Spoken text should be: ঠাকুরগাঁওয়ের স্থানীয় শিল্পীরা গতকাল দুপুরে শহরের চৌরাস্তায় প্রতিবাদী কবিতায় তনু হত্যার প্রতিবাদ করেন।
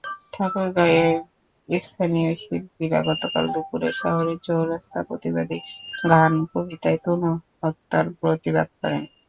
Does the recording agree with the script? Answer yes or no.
no